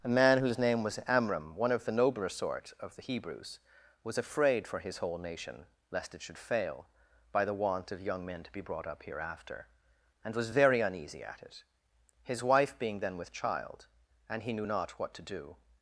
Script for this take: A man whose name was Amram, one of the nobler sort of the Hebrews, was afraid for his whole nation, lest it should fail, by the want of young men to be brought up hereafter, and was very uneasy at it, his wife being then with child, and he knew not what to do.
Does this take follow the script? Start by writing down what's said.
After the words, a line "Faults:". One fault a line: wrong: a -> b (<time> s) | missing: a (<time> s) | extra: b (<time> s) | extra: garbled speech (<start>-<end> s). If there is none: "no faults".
A man whose name was Amram, one of the nobler sort of the Hebrews, was afraid for his whole nation, lest it should fail, by the want of young men to be brought up hereafter, and was very uneasy at it, his wife being then with child, and he knew not what to do.
Faults:
no faults